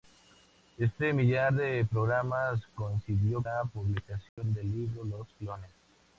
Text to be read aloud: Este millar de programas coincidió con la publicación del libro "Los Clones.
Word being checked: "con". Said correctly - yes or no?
no